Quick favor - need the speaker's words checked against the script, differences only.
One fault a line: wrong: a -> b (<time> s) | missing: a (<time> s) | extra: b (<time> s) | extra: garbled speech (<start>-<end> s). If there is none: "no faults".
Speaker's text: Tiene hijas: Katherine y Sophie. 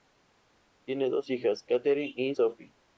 extra: dos (1.1 s)